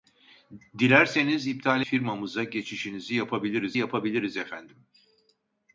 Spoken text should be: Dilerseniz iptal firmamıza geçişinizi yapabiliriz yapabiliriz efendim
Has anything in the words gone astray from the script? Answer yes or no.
no